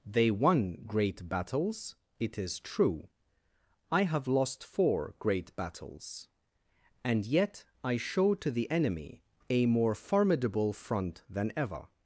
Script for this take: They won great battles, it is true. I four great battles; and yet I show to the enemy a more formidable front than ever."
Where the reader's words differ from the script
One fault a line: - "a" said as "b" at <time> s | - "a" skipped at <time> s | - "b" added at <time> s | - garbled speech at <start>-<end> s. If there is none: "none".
- "have lost" added at 4.0 s